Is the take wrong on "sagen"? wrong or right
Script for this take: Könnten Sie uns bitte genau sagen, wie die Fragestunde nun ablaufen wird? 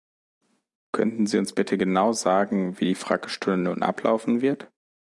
right